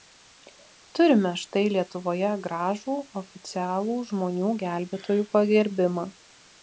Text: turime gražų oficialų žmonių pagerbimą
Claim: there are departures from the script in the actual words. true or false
true